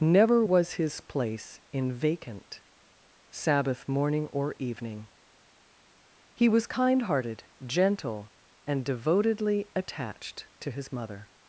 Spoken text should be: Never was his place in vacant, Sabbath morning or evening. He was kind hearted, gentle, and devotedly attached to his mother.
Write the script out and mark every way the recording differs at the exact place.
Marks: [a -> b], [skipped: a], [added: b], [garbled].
Never was his place in vacant, Sabbath morning or evening. He was kind hearted, gentle, and devotedly attached to his mother.